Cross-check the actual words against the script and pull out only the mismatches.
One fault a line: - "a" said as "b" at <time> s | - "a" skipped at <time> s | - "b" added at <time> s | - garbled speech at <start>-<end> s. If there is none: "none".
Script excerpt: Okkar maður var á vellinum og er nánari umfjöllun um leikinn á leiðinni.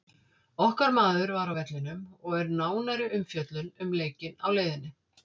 none